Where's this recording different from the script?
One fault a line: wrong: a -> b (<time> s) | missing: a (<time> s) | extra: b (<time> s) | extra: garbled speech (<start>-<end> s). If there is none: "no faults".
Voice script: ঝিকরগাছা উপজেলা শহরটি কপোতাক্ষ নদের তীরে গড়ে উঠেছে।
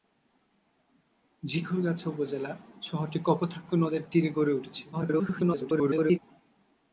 extra: garbled speech (4.9-6.2 s)